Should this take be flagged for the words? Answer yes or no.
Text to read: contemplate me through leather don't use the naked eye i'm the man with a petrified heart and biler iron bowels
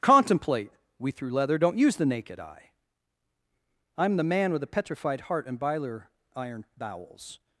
yes